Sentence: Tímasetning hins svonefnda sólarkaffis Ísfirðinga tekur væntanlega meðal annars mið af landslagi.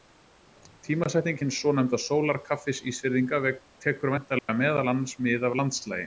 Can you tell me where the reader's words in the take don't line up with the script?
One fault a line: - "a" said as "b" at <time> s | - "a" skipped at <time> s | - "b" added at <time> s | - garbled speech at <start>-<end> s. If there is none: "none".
none